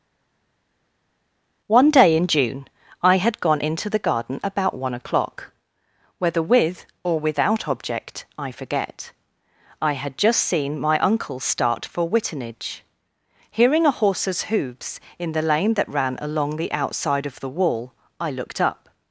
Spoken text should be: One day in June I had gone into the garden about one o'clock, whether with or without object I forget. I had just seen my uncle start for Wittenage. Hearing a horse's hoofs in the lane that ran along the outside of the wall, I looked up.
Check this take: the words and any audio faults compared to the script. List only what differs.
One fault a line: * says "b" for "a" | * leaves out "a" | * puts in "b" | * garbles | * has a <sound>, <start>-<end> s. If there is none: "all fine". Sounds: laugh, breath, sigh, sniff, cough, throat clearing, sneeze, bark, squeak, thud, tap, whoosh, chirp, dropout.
all fine